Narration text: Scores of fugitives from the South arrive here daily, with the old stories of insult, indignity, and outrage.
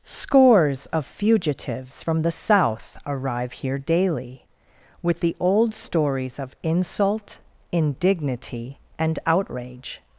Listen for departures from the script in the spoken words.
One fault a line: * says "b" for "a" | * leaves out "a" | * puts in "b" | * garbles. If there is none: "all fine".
all fine